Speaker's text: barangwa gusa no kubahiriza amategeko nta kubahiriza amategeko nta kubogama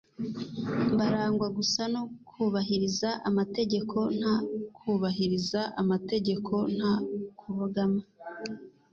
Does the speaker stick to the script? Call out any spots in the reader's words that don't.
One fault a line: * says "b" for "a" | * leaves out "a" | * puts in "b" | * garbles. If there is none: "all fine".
all fine